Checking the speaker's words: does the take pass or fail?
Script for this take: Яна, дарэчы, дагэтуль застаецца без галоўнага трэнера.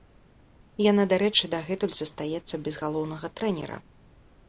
pass